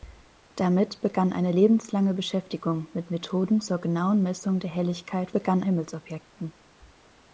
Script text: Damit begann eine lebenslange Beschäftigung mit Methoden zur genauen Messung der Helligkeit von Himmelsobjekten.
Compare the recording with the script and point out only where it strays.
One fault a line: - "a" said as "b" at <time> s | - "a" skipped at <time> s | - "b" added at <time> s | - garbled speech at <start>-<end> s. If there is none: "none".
- "von" said as "begann" at 5.3 s